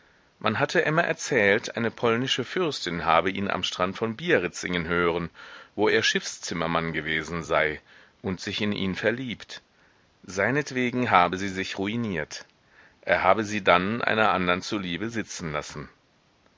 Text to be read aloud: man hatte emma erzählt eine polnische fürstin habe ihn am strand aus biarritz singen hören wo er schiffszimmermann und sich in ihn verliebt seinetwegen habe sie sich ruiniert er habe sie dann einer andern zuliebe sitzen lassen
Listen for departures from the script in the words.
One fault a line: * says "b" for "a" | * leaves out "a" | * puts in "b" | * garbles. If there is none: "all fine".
* says "von" for "aus"
* puts in "gewesen sei"